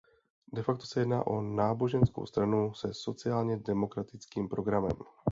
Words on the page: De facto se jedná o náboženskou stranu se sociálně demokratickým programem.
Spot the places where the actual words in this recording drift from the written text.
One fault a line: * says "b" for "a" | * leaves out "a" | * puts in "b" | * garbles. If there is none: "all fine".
all fine